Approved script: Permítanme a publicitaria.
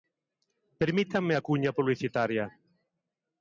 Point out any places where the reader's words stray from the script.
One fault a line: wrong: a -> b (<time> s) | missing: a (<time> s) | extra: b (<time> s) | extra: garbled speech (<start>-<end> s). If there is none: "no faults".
extra: cuña (1.5 s)